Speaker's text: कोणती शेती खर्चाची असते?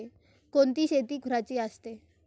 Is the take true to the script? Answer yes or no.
yes